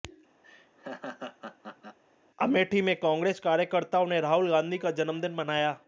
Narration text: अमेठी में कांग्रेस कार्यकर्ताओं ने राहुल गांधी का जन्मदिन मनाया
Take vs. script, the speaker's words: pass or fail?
pass